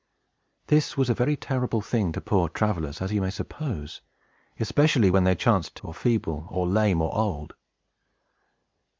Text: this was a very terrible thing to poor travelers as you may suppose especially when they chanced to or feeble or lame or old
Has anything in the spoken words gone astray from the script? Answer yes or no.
no